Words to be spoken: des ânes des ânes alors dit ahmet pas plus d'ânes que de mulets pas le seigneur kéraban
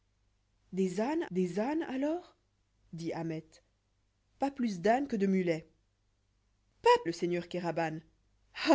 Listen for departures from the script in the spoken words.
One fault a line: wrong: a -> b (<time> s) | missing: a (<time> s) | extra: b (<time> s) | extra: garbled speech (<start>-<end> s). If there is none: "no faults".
no faults